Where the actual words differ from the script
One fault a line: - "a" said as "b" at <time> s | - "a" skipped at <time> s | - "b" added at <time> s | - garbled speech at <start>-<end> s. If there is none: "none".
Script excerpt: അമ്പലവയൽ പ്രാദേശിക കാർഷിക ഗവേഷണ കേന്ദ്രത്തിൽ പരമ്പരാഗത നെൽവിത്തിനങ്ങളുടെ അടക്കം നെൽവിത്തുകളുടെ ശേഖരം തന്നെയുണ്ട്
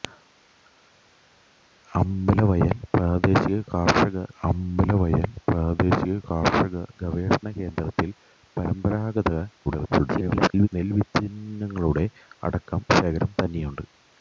- "അമ്പലവയൽ പ്രാദേശിക കാർഷിക" added at 4.4 s
- garbled speech at 9.6-10.7 s
- "നെൽവിത്തുകളുടെ" skipped at 12.8 s